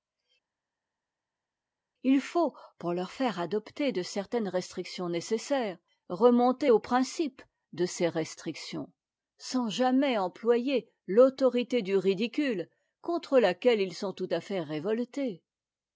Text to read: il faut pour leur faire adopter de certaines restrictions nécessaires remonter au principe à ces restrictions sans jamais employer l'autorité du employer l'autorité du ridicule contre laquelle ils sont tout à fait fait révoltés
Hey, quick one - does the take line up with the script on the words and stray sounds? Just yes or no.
no